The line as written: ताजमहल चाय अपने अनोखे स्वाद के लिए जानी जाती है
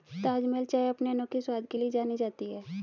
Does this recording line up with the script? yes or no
yes